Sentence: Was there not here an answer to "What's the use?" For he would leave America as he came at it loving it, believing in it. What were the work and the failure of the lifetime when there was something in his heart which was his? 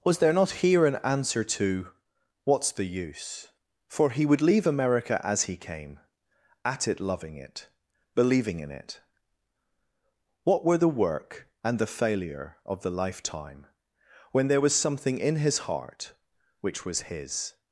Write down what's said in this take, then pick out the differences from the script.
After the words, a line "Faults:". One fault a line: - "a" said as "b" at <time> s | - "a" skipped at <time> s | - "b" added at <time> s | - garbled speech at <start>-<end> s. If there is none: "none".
Was there not here an answer to "What's the use?" For he would leave America as he came at it loving it, believing in it. What were the work and the failure of the lifetime when there was something in his heart which was his?
Faults:
none